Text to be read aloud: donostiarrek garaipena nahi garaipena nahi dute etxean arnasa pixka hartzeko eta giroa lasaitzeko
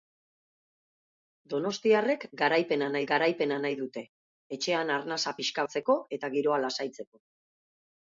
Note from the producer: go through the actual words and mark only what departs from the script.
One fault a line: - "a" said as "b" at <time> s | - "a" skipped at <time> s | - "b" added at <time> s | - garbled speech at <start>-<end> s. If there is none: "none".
none